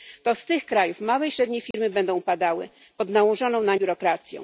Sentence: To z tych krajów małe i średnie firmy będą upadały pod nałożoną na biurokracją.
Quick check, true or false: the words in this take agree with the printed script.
true